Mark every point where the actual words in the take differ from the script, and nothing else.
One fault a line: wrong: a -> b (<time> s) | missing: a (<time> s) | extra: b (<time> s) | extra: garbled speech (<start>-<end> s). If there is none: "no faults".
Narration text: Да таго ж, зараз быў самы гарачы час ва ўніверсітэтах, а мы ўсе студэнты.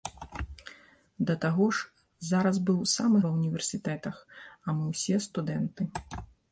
missing: гарачы час (3.2 s)